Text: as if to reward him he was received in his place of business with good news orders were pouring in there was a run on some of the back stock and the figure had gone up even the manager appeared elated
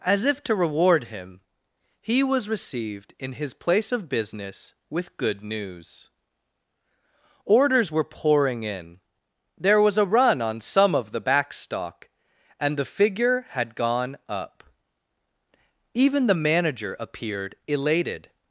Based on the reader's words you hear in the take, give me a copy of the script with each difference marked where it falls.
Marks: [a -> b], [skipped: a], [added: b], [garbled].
as if to reward him he was received in his place of business with good news orders were pouring in there was a run on some of the back stock and the figure had gone up even the manager appeared elated